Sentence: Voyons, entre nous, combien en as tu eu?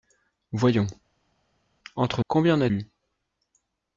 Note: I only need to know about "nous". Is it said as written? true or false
false